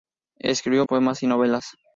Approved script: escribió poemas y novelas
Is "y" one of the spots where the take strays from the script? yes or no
no